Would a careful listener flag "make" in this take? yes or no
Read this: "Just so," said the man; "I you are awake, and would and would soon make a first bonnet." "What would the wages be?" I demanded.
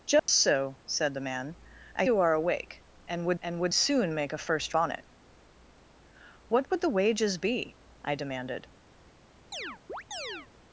no